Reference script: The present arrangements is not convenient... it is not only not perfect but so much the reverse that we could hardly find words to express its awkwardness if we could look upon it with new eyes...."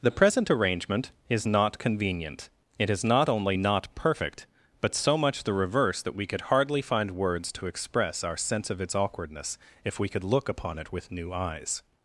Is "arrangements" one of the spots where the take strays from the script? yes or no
yes